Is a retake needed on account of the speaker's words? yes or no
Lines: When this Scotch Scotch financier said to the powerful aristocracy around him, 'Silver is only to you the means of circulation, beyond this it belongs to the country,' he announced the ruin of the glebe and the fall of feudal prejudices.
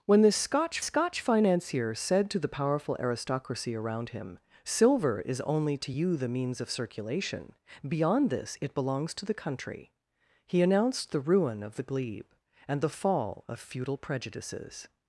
no